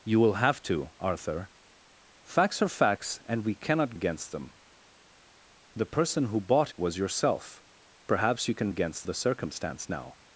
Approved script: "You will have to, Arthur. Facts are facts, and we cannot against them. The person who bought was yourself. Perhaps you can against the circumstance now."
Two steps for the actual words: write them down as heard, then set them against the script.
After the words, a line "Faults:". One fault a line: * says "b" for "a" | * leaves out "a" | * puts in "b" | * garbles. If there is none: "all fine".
"You will have to, Arthur. Facts are facts, and we cannot against them. The person who bought was yourself. Perhaps you can against the circumstance now."
Faults:
all fine